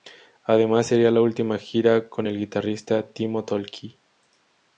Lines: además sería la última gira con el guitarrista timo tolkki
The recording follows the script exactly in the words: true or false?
true